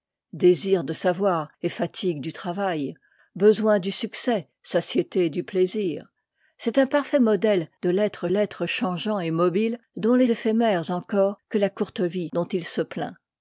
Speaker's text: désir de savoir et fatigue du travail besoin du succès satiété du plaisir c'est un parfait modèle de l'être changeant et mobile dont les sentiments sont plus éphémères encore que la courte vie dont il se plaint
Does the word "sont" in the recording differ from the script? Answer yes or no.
yes